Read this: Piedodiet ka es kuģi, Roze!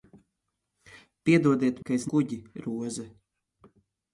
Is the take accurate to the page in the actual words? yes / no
yes